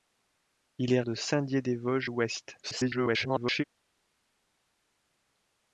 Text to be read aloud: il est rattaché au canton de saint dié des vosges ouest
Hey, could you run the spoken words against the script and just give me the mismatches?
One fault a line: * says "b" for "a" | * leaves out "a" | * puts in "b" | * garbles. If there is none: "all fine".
* leaves out "rattaché au canton"
* garbles